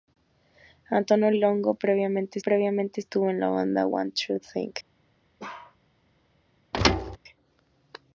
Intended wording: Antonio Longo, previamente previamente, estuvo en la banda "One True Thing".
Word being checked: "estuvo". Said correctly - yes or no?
yes